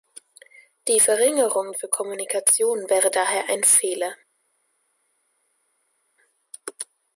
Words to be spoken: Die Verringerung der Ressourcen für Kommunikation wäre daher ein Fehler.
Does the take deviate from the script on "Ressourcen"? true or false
true